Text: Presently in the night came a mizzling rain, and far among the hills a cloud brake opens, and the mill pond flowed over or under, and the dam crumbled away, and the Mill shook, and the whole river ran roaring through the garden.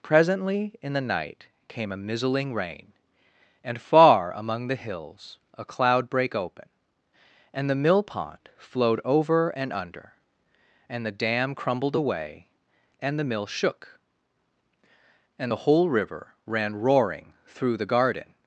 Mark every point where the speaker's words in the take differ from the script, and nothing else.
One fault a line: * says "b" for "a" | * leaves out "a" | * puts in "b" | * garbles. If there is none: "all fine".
* says "open" for "opens"
* says "and" for "or"